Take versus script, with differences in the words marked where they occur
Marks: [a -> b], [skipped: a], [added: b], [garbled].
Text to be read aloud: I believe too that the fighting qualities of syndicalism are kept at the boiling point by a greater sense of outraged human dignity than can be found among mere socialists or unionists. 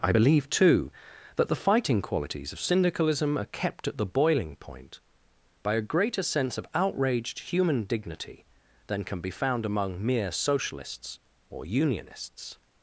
I believe too that the fighting qualities of syndicalism are kept at the boiling point by a greater sense of outraged human dignity than can be found among mere socialists or unionists.